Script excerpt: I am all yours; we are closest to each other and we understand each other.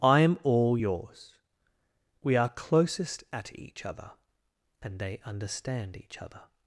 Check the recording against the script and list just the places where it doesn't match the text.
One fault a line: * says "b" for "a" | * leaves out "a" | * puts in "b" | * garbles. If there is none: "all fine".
* says "at" for "to"
* says "they" for "we"